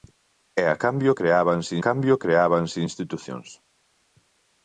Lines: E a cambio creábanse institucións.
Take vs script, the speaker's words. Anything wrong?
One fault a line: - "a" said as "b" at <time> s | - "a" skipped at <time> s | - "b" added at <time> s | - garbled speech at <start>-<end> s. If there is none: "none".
- "cambio creábanse" added at 1.9 s